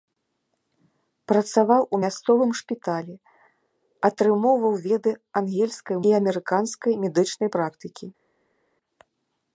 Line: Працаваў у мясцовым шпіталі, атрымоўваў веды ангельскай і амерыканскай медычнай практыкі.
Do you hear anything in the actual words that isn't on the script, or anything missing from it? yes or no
no